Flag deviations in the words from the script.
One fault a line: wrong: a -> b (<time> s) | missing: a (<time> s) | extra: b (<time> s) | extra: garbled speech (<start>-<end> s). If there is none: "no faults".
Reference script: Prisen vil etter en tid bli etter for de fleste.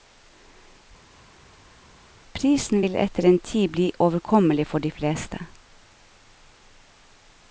wrong: etter -> overkommelig (4.0 s)